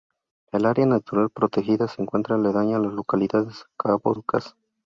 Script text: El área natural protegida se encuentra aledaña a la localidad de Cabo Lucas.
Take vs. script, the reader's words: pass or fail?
pass